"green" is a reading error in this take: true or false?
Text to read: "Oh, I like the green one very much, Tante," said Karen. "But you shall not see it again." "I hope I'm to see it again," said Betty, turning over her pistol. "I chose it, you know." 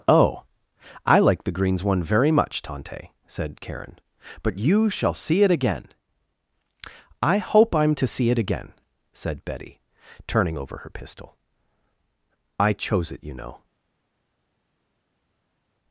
true